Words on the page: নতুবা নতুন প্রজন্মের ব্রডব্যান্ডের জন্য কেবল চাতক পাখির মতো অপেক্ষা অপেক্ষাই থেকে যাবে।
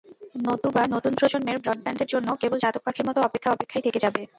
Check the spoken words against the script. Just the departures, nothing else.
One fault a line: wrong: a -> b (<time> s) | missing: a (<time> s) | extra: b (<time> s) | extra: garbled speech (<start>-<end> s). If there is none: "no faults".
no faults